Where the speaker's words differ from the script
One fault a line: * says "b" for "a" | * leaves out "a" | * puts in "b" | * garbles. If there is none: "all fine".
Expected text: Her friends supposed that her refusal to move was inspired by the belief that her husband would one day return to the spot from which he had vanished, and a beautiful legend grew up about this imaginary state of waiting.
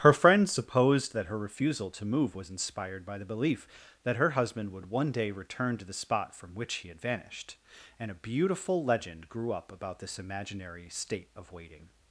all fine